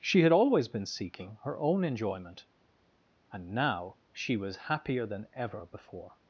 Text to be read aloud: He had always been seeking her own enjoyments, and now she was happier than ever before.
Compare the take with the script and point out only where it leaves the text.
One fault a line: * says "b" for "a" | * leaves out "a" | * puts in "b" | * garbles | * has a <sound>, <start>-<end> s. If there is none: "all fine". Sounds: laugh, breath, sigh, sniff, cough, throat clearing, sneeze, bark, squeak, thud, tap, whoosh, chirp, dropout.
* says "She" for "He"
* says "enjoyment" for "enjoyments"